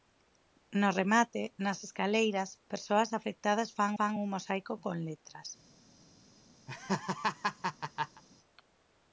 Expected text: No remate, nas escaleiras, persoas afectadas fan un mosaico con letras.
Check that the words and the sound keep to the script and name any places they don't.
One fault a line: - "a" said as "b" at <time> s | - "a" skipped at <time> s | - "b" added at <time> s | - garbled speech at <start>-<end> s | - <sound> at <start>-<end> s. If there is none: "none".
- "fan" added at 4.0 s
- laugh at 6.7-8.2 s